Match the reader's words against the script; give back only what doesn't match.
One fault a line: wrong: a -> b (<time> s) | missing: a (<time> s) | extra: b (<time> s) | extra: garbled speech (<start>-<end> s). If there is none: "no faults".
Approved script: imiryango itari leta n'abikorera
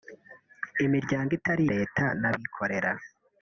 no faults